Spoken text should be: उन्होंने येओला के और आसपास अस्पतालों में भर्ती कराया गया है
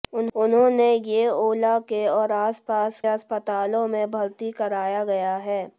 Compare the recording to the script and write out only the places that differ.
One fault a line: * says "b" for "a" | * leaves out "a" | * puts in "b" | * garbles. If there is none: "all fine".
all fine